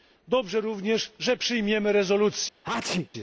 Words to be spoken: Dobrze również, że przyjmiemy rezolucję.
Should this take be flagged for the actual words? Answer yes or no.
no